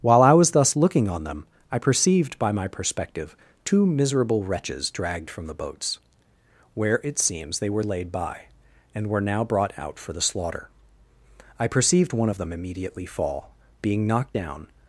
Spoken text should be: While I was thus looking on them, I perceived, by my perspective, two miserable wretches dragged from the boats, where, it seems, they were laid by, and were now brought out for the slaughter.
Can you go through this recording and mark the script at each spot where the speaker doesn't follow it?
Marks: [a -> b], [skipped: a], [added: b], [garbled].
While I was thus looking on them, I perceived, by my perspective, two miserable wretches dragged from the boats, where, it seems, they were laid by, and were now brought out for the slaughter. [added: I perceived one of them immediately fall being knocked down]